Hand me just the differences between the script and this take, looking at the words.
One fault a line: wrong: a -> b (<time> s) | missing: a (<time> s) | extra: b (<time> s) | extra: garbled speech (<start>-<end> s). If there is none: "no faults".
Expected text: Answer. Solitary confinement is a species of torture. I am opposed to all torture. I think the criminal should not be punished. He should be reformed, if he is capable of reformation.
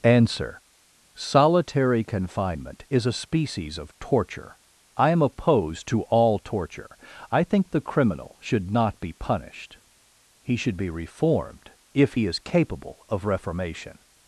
no faults